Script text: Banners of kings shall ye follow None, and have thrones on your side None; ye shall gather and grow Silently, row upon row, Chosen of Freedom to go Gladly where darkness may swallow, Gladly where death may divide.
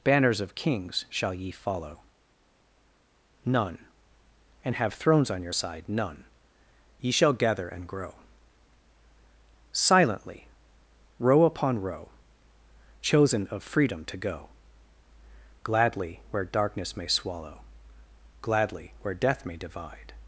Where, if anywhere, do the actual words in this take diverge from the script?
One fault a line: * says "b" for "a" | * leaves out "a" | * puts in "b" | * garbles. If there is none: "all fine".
all fine